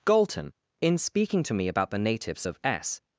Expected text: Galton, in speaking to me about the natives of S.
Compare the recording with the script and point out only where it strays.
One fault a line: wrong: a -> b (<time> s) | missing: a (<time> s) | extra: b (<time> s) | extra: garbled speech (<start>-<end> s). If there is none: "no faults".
no faults